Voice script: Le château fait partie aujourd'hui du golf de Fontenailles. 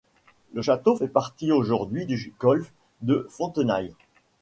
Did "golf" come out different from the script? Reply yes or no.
no